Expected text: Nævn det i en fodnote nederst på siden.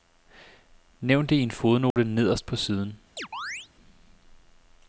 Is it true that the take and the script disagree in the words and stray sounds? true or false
true